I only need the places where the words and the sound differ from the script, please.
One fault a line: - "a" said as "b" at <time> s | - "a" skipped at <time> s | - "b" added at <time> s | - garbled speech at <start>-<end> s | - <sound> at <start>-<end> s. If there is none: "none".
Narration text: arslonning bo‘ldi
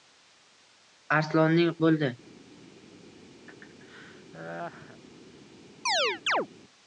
- laugh at 3.5-5.0 s
- chirp at 5.9-6.5 s